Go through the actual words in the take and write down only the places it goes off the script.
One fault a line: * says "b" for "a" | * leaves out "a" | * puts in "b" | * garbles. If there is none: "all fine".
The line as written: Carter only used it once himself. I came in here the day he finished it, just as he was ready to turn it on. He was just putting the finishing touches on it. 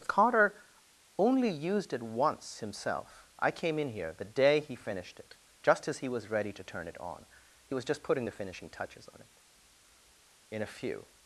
* puts in "In a few"